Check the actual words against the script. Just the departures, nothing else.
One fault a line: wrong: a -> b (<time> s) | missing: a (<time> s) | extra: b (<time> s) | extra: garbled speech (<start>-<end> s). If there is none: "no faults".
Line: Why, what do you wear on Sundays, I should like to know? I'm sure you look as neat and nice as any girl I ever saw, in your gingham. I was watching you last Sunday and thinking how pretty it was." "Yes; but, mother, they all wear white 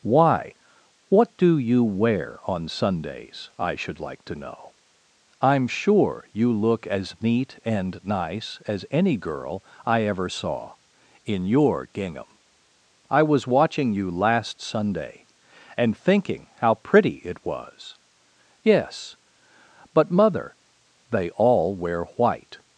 no faults